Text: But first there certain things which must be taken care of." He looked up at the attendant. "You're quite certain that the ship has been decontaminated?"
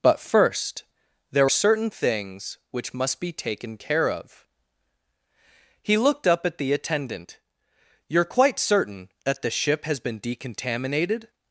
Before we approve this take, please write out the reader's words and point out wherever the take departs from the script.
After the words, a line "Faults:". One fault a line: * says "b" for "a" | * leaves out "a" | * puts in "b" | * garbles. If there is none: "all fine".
But first there certain things which must be taken care of." He looked up at the attendant. "You're quite certain that the ship has been decontaminated?"
Faults:
all fine